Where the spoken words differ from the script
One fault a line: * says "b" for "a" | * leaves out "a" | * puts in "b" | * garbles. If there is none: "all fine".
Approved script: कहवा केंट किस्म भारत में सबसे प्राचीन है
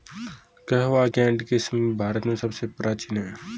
all fine